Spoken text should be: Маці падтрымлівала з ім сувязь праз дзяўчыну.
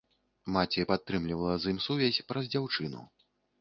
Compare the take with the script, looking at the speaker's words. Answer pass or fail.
pass